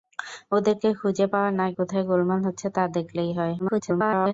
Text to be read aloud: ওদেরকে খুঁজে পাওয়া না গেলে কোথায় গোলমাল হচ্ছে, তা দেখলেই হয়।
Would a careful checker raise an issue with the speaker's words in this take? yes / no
yes